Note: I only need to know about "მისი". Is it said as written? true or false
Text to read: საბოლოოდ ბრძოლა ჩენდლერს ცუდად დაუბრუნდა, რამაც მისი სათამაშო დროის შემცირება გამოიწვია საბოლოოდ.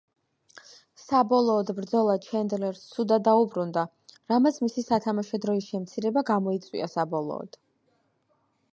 true